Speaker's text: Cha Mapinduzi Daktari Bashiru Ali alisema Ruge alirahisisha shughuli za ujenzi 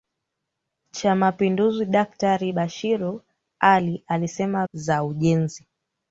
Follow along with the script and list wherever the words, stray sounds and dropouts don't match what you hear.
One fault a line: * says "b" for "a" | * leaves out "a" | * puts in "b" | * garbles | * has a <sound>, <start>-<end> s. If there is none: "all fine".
* leaves out "Ruge alirahisisha shughuli"